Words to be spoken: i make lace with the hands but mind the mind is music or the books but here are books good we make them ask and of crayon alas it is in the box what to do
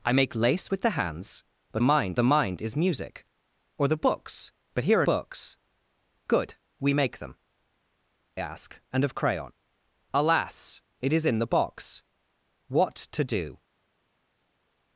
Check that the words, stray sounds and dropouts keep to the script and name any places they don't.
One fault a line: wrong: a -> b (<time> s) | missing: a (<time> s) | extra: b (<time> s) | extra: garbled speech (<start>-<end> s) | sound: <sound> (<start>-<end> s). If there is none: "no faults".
no faults